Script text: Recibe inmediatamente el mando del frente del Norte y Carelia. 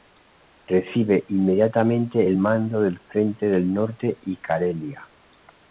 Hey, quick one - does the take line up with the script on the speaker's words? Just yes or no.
yes